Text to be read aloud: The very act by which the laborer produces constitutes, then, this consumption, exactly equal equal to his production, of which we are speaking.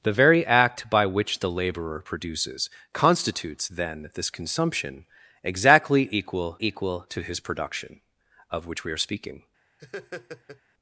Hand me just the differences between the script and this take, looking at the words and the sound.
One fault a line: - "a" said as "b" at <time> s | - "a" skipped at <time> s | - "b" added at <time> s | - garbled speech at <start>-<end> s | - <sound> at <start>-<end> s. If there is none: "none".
- laugh at 9.8-10.6 s